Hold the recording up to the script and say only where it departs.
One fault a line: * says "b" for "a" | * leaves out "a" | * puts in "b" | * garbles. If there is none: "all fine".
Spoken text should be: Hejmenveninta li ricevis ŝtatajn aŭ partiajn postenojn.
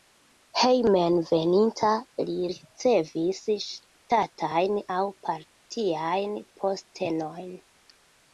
all fine